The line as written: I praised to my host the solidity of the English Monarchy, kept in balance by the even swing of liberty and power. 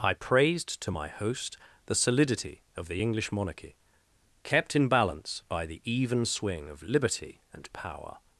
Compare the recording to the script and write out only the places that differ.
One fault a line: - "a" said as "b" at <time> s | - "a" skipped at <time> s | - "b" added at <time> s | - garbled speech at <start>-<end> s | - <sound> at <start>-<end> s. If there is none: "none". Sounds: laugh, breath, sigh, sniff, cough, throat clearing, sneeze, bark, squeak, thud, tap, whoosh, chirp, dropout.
none